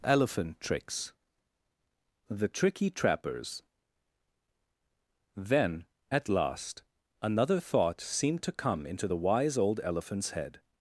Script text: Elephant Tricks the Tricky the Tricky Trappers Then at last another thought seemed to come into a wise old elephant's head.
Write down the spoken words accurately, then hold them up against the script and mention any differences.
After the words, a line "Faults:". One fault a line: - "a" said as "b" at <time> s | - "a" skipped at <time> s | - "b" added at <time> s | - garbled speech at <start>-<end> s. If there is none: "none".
Elephant Tricks the Tricky Trappers Then at last another thought seemed to come into the wise old elephant's head.
Faults:
- "the Tricky" skipped at 2.9 s
- "a" said as "the" at 9.1 s